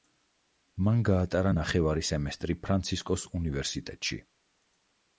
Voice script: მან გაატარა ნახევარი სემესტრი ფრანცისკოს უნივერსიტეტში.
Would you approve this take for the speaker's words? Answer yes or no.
yes